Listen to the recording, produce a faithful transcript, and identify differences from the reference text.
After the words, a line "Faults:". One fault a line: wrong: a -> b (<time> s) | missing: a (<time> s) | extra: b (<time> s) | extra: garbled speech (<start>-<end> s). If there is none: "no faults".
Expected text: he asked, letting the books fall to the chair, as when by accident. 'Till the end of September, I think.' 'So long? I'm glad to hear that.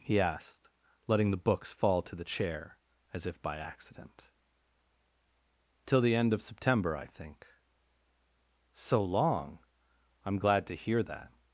he asked, letting the books fall to the chair, as if by accident. 'Till the end of September, I think.' 'So long? I'm glad to hear that.
Faults:
wrong: when -> if (3.2 s)